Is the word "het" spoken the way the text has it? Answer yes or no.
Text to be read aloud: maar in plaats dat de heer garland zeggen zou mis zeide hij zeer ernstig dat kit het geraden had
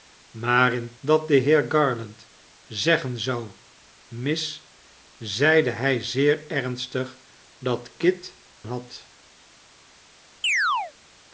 no